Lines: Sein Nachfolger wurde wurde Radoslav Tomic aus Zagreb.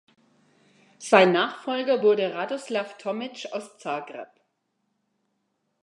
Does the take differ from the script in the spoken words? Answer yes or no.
yes